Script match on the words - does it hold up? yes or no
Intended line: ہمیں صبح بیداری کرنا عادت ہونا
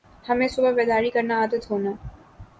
yes